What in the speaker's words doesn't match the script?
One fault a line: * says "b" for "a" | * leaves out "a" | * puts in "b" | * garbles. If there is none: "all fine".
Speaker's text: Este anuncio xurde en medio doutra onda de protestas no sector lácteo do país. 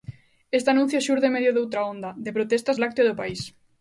* leaves out "no sector"